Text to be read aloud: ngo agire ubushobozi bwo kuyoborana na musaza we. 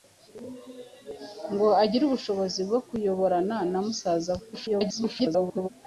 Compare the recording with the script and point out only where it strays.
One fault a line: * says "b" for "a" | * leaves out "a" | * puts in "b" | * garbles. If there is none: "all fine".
* garbles